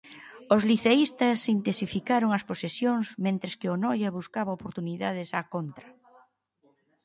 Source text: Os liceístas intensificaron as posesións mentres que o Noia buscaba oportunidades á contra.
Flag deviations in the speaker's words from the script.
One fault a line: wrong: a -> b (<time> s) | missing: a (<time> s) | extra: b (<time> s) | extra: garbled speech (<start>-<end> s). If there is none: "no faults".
no faults